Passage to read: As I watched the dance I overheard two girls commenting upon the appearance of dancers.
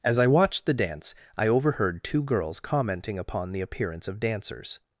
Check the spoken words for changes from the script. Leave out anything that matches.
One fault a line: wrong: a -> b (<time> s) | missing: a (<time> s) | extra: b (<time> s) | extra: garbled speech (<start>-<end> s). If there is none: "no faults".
no faults